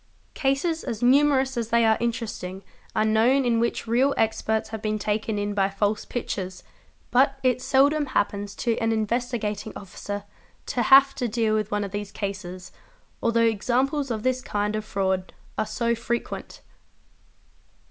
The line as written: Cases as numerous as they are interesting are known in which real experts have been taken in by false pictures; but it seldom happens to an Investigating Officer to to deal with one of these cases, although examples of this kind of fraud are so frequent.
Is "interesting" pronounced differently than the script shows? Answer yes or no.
no